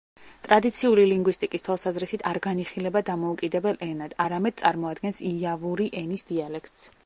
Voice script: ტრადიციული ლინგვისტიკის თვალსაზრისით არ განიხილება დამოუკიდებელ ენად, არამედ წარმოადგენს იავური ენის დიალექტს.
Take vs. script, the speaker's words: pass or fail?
pass